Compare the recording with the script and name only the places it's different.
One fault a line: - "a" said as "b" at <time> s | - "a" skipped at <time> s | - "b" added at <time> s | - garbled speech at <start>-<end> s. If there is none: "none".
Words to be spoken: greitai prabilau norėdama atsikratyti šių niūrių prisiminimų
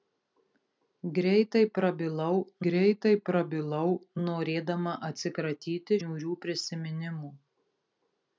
- "greitai prabilau" added at 2.7 s
- "šių" skipped at 6.0 s